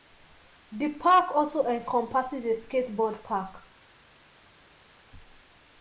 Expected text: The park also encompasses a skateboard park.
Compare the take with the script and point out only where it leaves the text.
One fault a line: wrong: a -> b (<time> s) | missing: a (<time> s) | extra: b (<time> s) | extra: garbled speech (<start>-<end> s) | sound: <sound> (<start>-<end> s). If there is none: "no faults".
no faults